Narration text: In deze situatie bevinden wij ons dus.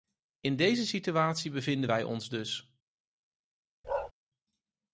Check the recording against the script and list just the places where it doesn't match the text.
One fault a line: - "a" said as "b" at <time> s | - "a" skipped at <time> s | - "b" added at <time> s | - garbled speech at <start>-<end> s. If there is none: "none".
none